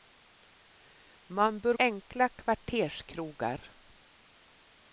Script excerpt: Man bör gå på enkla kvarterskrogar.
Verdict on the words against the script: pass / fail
fail